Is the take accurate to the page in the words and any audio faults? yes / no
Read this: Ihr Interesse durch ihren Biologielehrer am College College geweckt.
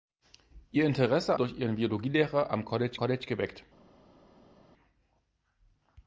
yes